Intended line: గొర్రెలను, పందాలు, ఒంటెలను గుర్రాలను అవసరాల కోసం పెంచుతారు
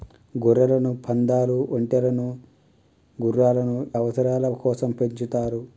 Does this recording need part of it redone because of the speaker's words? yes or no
no